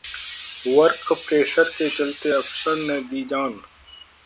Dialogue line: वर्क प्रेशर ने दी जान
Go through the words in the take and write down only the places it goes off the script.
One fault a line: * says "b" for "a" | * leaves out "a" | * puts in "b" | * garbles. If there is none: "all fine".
* puts in "के चलते अफसर"